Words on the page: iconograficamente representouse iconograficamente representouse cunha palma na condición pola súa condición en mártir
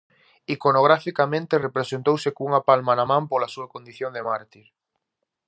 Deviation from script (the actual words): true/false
true